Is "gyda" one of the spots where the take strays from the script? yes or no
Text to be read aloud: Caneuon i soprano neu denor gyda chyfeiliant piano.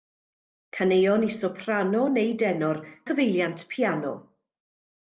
yes